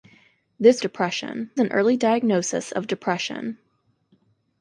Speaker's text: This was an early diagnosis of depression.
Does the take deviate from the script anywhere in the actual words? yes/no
yes